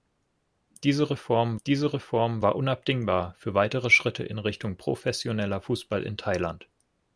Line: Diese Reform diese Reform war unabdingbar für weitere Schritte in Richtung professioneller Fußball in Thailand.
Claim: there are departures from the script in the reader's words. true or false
false